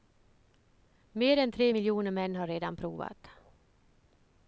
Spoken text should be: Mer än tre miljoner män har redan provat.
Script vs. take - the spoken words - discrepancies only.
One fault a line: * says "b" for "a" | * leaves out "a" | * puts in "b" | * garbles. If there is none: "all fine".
all fine